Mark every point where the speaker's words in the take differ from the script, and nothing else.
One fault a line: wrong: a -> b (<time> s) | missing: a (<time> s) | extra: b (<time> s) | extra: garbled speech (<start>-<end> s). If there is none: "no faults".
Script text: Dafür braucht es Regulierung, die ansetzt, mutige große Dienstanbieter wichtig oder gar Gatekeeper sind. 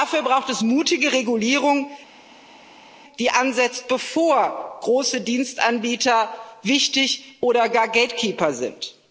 extra: mutige (0.6 s)
wrong: mutige -> bevor (3.9 s)